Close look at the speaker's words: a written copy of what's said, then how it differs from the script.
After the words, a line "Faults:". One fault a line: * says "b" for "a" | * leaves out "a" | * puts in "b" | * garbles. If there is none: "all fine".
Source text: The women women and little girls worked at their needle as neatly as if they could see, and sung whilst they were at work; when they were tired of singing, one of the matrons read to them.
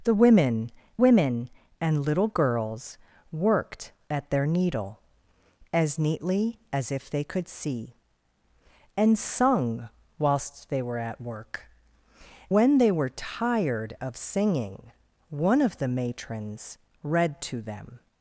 The women women and little girls worked at their needle as neatly as if they could see, and sung whilst they were at work; when they were tired of singing, one of the matrons read to them.
Faults:
all fine